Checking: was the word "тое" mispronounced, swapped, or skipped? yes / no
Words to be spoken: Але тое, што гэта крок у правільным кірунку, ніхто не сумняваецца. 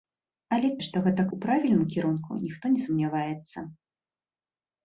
yes